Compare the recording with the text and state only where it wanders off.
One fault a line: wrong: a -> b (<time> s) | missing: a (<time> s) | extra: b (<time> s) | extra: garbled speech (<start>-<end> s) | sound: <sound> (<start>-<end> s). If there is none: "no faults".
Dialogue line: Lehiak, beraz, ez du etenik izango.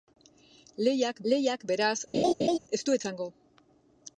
extra: lehiak (1.3 s)
sound: laugh (2.1-2.6 s)
missing: etenik (3.0 s)